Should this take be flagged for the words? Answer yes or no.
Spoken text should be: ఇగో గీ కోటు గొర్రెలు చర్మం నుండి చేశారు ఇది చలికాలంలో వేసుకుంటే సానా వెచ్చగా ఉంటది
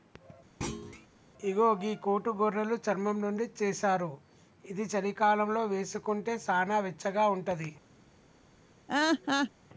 no